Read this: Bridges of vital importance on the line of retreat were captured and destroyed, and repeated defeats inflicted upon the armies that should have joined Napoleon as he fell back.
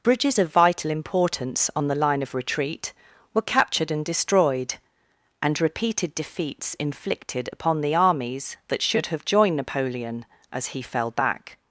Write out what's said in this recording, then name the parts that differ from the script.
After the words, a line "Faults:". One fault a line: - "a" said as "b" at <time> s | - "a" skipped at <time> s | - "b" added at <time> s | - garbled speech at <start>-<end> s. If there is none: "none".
Bridges of vital importance on the line of retreat were captured and destroyed, and repeated defeats inflicted upon the armies that should have joined Napoleon as he fell back.
Faults:
none